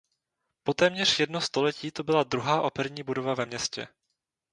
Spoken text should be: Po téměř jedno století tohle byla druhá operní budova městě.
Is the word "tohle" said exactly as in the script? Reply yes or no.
no